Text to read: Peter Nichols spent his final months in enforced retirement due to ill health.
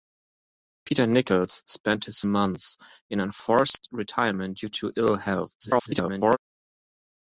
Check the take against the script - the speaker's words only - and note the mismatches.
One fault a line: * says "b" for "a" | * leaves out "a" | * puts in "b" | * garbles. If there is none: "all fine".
* leaves out "final"
* garbles